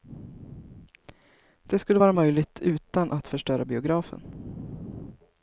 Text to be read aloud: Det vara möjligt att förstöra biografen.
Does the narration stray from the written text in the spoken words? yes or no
yes